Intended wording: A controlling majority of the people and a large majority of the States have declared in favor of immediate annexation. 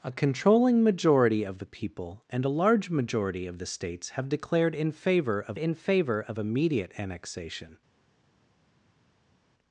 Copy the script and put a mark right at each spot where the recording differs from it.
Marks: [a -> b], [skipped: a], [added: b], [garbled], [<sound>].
A controlling majority of the people and a large majority of the States have declared in favor of [added: in favor of] immediate annexation.